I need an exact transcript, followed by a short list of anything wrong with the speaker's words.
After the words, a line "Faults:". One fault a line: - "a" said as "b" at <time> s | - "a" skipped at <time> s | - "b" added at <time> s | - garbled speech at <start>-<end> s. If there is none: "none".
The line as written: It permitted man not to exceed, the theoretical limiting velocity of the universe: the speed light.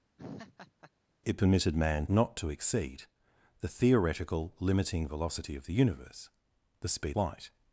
It permitted man not to exceed, the theoretical limiting velocity of the universe: the speed light.
Faults:
none